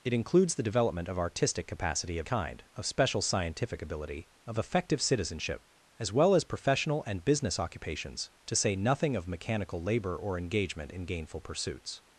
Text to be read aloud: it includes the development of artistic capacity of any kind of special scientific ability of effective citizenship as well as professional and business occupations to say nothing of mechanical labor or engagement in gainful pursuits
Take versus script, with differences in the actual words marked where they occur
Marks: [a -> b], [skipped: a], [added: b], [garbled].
it includes the development of artistic capacity of [skipped: any] kind of special scientific ability of effective citizenship as well as professional and business occupations to say nothing of mechanical labor or engagement in gainful pursuits